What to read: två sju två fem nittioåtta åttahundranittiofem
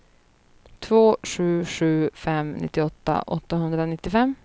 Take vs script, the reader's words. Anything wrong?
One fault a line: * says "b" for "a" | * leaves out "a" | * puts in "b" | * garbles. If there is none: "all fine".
* says "sju" for "två"